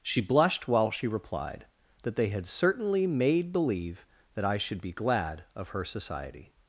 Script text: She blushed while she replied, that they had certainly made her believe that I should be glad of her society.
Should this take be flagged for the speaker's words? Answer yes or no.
yes